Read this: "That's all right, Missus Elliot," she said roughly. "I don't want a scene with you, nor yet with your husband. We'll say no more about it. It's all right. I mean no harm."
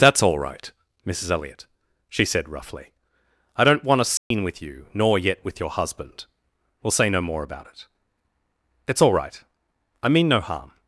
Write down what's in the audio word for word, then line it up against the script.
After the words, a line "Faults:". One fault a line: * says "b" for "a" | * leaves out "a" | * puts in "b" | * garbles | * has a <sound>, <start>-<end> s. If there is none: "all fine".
"That's all right, Missus Elliot," she said roughly. "I don't want a scene with you, nor yet with your husband. We'll say no more about it. It's all right. I mean no harm."
Faults:
* has a dropout, 4.2-4.3 s